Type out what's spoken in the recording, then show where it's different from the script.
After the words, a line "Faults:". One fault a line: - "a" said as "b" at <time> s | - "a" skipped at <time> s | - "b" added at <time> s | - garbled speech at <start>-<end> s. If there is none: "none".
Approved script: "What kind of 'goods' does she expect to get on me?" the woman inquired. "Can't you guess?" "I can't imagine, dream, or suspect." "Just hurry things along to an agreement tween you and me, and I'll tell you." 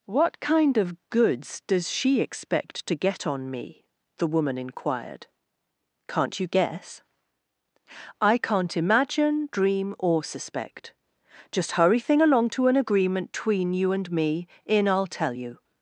"What kind of 'goods' does she expect to get on me?" the woman inquired. "Can't you guess?" "I can't imagine, dream, or suspect." "Just hurry thing along to an agreement tween you and me, in I'll tell you."
Faults:
- "things" said as "thing" at 12.0 s
- "and" said as "in" at 14.7 s